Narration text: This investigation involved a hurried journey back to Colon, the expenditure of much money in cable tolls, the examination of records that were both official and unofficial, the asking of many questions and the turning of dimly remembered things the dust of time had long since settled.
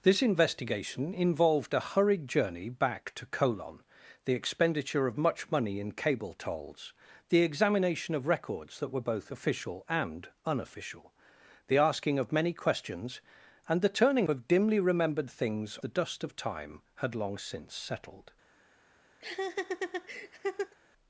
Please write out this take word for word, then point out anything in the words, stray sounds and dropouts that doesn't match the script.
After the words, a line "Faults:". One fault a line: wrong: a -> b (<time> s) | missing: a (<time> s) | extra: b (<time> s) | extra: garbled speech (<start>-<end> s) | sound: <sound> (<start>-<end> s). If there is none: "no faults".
This investigation involved a hurried journey back to Colon, the expenditure of much money in cable tolls, the examination of records that were both official and unofficial, the asking of many questions and the turning of dimly remembered things the dust of time had long since settled.
Faults:
sound: laugh (19.2-20.7 s)